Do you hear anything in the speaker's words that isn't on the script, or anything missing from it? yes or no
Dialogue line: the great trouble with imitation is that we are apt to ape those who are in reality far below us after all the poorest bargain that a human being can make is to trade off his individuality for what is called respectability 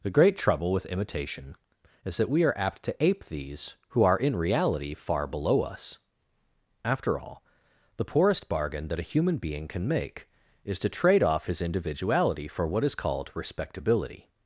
yes